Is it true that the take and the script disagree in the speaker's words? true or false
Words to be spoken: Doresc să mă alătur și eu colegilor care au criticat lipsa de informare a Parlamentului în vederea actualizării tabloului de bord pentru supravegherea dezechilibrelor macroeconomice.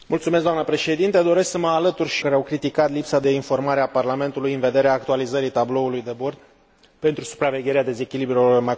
true